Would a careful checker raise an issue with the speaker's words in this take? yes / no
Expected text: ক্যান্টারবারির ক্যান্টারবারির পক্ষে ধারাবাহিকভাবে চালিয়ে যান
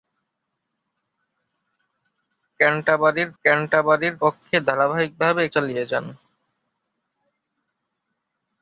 no